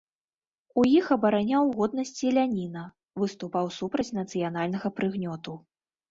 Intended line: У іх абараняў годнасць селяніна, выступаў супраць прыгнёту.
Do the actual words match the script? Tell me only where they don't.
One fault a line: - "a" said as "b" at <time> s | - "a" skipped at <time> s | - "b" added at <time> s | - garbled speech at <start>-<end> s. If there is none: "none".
- "нацыянальнага" added at 4.2 s